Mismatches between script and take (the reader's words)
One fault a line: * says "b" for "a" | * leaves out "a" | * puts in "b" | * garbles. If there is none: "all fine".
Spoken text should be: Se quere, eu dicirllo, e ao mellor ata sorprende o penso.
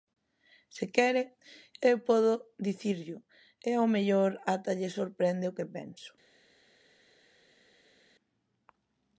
* puts in "podo"
* puts in "lle"
* puts in "que"